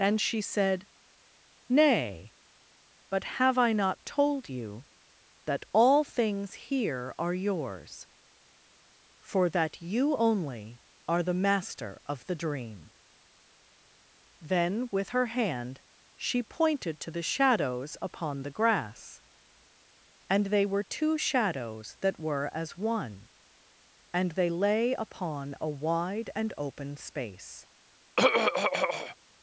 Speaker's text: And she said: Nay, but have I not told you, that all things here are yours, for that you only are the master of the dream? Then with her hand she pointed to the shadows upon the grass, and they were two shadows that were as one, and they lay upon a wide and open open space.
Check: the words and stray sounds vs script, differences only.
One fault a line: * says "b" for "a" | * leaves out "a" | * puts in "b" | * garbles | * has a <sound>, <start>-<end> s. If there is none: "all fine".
* leaves out "open"
* has a throat clearing, 28.2-29.2 s